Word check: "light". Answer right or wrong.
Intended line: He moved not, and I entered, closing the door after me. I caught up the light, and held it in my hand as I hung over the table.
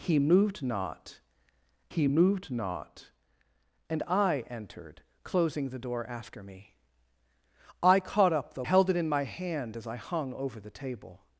wrong